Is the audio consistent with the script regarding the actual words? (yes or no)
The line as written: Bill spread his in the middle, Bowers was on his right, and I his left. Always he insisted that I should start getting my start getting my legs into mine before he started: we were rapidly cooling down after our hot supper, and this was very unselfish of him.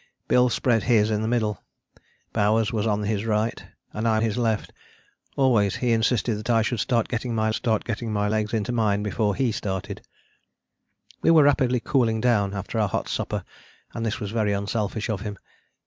yes